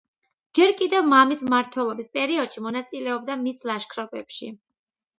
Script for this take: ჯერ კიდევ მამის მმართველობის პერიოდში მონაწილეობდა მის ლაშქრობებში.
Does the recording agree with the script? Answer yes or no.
yes